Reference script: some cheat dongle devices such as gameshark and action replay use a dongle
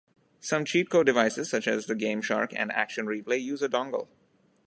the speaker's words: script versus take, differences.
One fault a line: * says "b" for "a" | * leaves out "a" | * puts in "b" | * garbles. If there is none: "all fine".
* says "code" for "dongle"
* puts in "the"